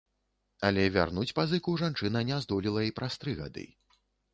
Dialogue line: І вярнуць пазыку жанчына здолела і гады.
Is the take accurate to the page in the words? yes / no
no